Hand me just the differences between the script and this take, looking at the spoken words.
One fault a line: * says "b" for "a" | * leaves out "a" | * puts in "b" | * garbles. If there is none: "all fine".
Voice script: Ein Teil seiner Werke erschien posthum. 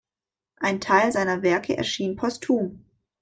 all fine